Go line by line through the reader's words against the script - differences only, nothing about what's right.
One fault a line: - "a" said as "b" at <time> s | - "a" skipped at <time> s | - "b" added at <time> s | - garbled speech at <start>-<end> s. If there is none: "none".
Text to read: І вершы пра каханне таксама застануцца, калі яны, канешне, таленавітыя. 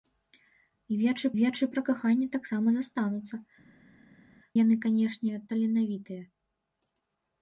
- "вершы" added at 1.4 s
- "калі" skipped at 3.4 s